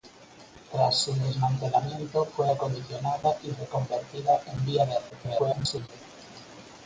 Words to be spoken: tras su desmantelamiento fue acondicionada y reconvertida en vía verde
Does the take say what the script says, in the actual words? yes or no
no